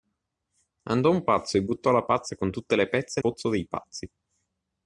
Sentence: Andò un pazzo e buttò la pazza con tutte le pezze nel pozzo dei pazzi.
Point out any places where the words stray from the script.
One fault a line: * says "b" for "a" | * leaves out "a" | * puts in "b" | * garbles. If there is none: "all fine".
* leaves out "nel"